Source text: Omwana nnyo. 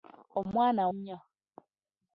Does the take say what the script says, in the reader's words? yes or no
yes